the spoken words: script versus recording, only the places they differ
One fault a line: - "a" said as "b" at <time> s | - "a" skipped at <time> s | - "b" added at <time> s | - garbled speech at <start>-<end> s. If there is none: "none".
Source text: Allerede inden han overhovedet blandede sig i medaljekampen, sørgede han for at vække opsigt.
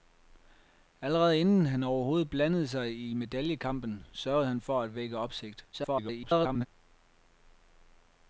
- garbled speech at 5.7-6.7 s